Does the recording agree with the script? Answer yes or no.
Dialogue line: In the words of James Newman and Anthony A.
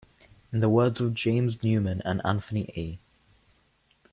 yes